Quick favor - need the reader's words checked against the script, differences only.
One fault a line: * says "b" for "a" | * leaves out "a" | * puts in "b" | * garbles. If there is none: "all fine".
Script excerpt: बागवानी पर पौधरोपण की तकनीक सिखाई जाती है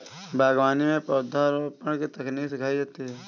* says "में" for "पर"